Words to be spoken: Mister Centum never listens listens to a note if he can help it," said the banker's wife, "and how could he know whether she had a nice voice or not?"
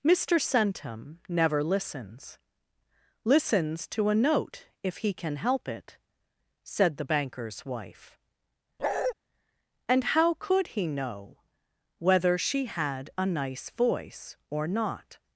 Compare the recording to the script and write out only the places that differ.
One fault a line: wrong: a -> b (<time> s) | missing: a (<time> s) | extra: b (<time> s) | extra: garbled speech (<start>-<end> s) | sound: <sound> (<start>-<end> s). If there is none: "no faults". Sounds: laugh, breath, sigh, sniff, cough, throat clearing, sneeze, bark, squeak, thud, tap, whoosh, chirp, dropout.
sound: bark (8.8-9.1 s)